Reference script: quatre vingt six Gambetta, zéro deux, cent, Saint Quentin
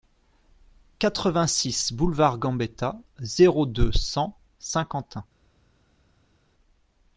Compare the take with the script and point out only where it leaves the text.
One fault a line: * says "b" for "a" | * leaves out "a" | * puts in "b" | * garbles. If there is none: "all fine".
* puts in "boulevard"